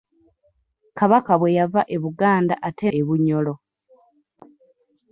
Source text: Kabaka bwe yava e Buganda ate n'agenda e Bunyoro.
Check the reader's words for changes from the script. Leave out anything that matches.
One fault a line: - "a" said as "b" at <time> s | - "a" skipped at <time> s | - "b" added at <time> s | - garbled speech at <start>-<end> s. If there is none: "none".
- "n'agenda" skipped at 2.9 s